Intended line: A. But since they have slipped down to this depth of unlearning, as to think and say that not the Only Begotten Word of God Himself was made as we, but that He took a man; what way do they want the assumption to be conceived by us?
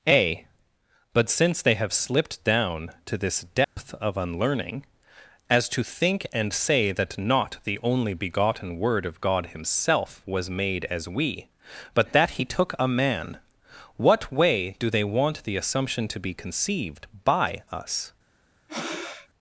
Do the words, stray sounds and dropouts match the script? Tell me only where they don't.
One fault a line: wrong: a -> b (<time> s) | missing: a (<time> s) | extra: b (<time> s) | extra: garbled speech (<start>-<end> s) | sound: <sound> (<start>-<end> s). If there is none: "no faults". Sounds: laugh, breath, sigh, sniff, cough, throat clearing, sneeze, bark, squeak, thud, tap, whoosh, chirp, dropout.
sound: dropout (3.6-3.8 s)
sound: breath (18.7-19.3 s)